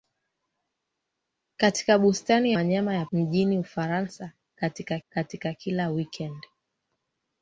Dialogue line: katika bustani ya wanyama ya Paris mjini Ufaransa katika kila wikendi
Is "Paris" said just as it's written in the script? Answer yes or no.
no